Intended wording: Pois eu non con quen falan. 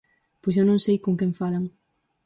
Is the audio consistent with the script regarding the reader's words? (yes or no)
no